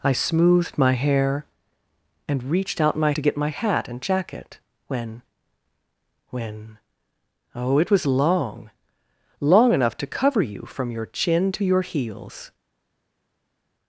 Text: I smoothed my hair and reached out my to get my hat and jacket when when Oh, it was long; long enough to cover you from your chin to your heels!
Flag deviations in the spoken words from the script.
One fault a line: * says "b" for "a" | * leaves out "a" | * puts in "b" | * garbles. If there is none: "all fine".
all fine